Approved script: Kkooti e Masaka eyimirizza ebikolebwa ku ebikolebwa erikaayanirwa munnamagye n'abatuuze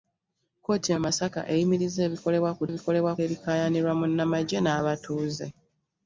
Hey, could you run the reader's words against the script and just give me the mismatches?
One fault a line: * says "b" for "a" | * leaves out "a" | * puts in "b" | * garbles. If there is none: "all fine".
all fine